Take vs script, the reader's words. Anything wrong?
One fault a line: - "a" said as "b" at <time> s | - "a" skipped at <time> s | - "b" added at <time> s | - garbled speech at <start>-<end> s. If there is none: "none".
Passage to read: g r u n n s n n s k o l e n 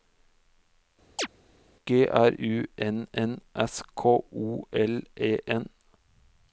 - "n n s" skipped at 3.8 s